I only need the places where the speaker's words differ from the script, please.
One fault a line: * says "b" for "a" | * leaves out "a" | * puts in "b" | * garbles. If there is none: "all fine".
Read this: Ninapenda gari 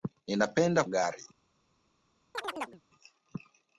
all fine